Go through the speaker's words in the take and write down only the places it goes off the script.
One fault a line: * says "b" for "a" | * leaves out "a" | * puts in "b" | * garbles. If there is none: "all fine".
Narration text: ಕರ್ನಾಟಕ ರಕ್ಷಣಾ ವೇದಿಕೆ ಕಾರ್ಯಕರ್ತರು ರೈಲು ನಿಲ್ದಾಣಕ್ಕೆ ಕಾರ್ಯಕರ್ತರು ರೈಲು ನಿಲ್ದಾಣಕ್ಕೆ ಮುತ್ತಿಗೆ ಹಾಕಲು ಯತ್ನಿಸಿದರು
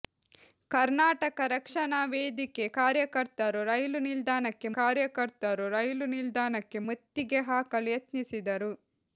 all fine